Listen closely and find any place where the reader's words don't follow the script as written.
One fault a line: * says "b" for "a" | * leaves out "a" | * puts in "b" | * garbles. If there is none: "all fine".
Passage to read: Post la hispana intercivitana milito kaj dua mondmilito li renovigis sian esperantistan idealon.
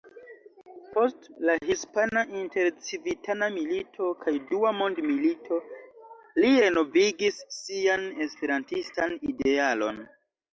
all fine